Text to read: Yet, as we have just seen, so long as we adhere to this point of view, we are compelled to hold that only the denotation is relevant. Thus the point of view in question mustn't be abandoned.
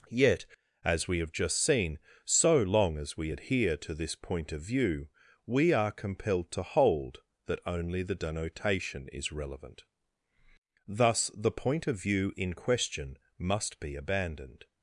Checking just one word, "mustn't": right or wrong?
wrong